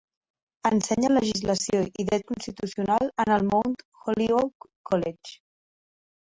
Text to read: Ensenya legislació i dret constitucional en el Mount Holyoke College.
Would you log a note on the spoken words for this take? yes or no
no